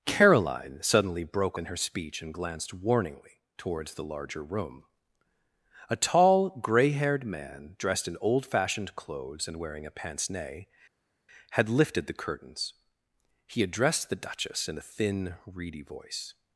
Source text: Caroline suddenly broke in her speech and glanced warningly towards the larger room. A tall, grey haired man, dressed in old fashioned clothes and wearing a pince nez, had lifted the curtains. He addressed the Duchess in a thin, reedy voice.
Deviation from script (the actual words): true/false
false